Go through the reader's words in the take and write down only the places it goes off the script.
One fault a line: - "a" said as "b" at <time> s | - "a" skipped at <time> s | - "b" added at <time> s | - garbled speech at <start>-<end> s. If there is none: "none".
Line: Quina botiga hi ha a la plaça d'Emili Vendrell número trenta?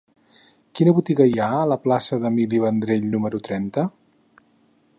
none